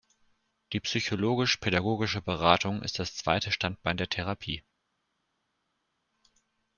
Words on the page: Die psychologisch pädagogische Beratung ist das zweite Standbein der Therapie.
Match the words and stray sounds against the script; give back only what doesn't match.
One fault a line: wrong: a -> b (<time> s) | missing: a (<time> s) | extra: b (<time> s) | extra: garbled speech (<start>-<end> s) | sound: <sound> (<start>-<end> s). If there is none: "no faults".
no faults